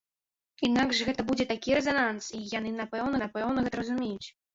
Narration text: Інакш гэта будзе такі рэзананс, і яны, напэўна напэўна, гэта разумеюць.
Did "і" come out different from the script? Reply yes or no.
no